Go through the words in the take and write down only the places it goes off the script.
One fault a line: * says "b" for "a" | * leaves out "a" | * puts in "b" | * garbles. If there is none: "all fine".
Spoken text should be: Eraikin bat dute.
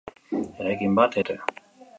all fine